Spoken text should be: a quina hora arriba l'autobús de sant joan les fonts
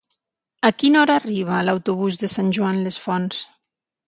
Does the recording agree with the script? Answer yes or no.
yes